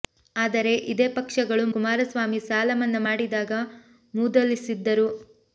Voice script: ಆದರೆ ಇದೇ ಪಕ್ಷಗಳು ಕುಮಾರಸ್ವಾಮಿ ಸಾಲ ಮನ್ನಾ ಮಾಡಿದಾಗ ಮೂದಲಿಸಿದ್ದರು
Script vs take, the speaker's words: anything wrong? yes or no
no